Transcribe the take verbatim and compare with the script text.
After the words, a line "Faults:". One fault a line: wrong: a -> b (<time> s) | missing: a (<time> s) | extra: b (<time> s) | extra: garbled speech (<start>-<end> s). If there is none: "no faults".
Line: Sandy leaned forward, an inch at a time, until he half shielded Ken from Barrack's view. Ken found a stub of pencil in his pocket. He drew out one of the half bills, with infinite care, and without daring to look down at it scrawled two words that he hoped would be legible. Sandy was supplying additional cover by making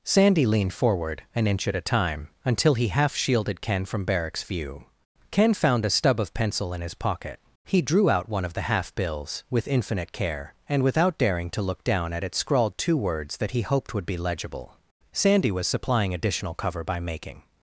Sandy leaned forward, an inch at a time, until he half shielded Ken from Barrack's view. Ken found a stub of pencil in his pocket. He drew out one of the half bills, with infinite care, and without daring to look down at it scrawled two words that he hoped would be legible. Sandy was supplying additional cover by making
Faults:
no faults